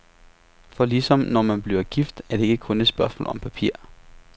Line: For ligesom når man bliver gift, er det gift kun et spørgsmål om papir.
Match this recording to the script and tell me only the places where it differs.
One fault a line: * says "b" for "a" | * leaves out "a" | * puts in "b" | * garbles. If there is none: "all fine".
* says "ikke" for "gift"